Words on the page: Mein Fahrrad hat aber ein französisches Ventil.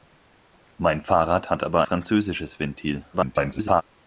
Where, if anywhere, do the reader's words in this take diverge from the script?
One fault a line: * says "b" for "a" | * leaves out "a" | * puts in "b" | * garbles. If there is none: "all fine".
* leaves out "ein"
* garbles